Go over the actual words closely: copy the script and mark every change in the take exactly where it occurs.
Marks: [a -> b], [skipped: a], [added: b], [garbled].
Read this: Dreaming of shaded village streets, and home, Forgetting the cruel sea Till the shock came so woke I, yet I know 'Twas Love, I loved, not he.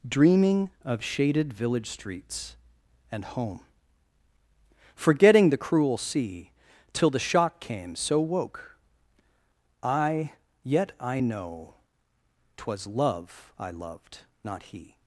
Dreaming of shaded village streets, and home, Forgetting the cruel sea Till the shock came so woke I, yet I know 'Twas Love, I loved, not he.